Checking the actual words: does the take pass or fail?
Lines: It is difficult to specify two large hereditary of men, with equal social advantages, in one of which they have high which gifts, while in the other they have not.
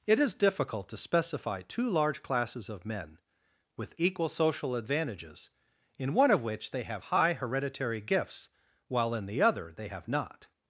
fail